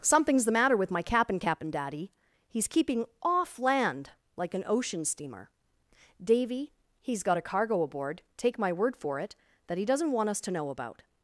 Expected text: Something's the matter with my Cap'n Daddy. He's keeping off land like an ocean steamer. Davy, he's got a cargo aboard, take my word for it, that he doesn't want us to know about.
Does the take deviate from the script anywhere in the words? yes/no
yes